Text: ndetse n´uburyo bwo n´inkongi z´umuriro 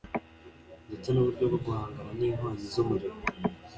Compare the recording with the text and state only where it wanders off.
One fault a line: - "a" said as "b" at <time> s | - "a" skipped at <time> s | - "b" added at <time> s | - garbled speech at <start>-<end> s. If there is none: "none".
- "guhangana" added at 1.6 s